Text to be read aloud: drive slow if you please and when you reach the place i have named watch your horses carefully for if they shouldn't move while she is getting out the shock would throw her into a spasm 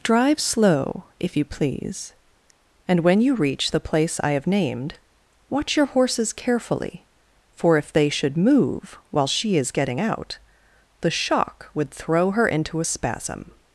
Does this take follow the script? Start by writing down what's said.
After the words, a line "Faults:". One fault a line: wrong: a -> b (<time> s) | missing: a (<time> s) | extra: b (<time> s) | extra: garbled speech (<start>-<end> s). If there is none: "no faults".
drive slow if you please and when you reach the place i have named watch your horses carefully for if they should move while she is getting out the shock would throw her into a spasm
Faults:
wrong: shouldn't -> should (8.1 s)